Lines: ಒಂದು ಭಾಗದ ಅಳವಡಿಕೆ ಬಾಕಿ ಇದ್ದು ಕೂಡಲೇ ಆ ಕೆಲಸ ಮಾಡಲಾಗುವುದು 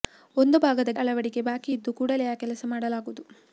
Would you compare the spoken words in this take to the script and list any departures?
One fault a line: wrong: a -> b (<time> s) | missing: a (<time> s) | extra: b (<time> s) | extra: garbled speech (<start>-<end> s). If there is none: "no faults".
no faults